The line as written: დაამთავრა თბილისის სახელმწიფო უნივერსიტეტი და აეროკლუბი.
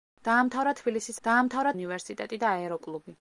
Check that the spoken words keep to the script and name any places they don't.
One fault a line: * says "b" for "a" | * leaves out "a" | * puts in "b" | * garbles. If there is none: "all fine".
* says "დაამთავრა" for "სახელმწიფო"